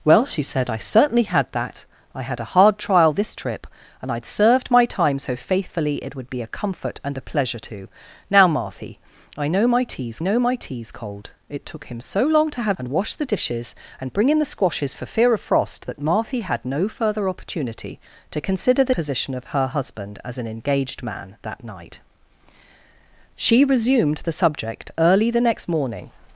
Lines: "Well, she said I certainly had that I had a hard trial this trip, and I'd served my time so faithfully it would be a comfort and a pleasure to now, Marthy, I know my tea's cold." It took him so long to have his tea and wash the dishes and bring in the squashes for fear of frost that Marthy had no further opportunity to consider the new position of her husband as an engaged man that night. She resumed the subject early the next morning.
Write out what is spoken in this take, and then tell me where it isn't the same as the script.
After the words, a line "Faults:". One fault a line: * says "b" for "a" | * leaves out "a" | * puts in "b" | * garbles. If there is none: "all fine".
"Well, she said I certainly had that I had a hard trial this trip, and I'd served my time so faithfully it would be a comfort and a pleasure to now, Marthy, I know my tea's know my tea's cold." It took him so long to have and wash the dishes and bring in the squashes for fear of frost that Marthy had no further opportunity to consider the position of her husband as an engaged man that night. She resumed the subject early the next morning.
Faults:
* puts in "know my tea's"
* leaves out "his tea"
* leaves out "new"